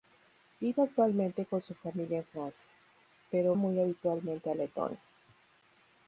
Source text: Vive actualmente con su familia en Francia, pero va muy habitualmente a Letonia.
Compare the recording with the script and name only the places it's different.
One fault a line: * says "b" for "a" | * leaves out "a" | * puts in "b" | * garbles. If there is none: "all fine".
* leaves out "va"